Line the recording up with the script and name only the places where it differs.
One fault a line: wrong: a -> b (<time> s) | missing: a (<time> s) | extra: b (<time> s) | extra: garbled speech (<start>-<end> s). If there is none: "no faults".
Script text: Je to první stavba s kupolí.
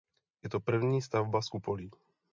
no faults